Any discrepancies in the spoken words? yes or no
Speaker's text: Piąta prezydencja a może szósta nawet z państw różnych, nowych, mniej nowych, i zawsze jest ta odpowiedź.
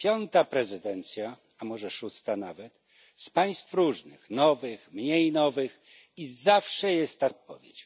no